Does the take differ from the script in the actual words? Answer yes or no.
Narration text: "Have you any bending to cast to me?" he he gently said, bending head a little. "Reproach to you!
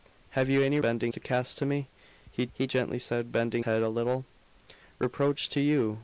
no